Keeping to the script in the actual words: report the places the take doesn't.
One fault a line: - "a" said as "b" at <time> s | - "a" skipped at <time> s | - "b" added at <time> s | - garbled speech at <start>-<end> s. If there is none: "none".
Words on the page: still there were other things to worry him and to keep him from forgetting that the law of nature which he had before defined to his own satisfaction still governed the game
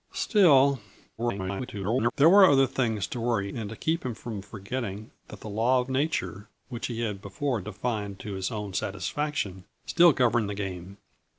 - garbled speech at 1.2-2.1 s
- "him" skipped at 3.5 s